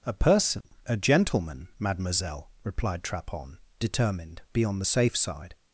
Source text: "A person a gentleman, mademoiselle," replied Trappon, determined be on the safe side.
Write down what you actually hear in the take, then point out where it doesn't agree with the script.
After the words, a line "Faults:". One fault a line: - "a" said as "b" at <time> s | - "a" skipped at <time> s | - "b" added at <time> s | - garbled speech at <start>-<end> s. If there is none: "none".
"A person a gentleman, mademoiselle," replied Trappon, determined be on the safe side.
Faults:
none